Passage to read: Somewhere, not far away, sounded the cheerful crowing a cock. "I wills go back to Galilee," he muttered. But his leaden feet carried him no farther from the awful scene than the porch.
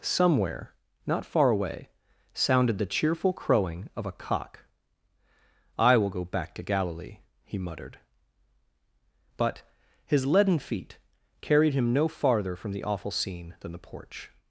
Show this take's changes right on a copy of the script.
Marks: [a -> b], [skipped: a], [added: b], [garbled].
Somewhere, not far away, sounded the cheerful crowing [added: of] a cock. "I [wills -> will] go back to Galilee," he muttered. But his leaden feet carried him no farther from the awful scene than the porch.